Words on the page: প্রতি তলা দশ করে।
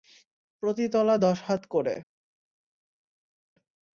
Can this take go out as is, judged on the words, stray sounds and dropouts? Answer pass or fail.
fail